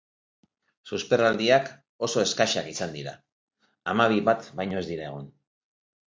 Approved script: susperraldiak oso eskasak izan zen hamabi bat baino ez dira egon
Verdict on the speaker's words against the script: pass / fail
fail